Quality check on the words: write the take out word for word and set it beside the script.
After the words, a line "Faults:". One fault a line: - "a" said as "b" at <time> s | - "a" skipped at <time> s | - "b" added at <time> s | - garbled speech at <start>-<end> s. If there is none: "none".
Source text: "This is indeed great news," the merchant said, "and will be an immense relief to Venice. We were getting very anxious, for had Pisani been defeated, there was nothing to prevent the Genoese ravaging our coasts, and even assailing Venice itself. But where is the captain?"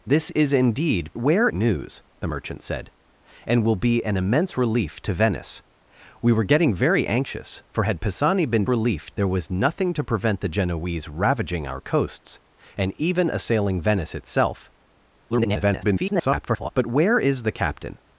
"This is indeed where news," the merchant said, "and will be an immense relief to Venice. We were getting very anxious, for had Pisani been relief, there was nothing to prevent the Genoese ravaging our coasts, and even assailing Venice itself. [garbled] But where is the captain?"
Faults:
- "great" said as "where" at 1.2 s
- "defeated" said as "relief" at 8.7 s
- garbled speech at 15.3-16.7 s